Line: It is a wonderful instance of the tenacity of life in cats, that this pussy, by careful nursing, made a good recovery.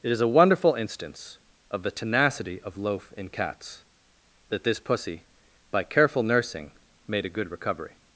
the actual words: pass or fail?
fail